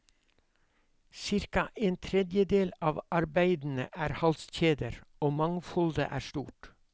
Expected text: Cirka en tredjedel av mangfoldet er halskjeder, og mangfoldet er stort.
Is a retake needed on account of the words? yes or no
yes